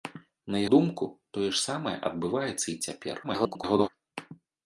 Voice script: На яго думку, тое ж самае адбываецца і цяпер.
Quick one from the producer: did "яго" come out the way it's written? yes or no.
no